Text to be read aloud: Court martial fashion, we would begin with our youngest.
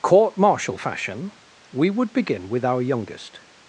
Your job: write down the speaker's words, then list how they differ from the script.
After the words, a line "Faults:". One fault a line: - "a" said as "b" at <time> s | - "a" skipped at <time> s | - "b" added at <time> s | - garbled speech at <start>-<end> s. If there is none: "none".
Court martial fashion, we would begin with our youngest.
Faults:
none